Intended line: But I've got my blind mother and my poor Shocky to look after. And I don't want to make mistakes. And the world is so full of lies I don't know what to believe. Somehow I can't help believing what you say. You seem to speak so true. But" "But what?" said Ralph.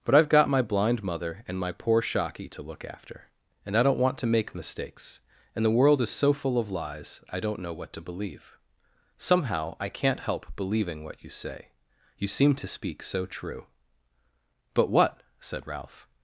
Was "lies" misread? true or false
false